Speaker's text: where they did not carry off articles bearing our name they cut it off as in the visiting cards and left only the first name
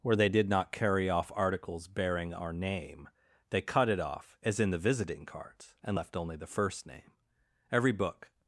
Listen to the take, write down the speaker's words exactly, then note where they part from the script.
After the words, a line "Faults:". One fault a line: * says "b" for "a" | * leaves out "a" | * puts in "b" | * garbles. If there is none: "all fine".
where they did not carry off articles bearing our name they cut it off as in the visiting cards and left only the first name every book
Faults:
* puts in "every book"